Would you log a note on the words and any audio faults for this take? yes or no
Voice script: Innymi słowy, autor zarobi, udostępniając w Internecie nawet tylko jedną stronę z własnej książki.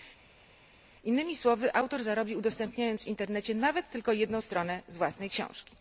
no